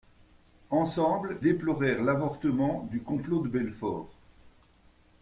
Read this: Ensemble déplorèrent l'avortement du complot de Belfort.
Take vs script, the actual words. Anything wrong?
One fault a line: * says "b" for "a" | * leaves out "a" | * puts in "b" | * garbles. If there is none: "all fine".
all fine